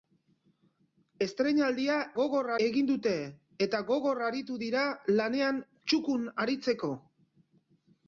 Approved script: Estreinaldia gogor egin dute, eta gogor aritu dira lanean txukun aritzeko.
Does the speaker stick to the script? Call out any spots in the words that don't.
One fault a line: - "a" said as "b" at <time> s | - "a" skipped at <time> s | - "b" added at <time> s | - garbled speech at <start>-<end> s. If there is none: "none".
none